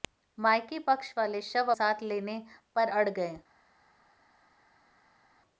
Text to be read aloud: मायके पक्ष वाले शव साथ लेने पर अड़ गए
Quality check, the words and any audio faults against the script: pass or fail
pass